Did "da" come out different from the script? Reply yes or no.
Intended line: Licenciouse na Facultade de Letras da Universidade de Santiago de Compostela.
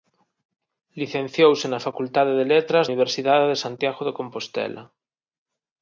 yes